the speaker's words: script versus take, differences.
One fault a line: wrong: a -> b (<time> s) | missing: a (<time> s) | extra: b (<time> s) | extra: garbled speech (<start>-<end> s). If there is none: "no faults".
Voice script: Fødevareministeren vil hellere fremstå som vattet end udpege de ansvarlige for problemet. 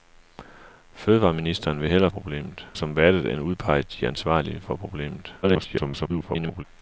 wrong: fremstå -> problemet (2.1 s)
extra: garbled speech (5.4-6.6 s)